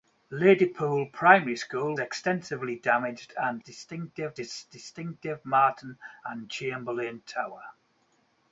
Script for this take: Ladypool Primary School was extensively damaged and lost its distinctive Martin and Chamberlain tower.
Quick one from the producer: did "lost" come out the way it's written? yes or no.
no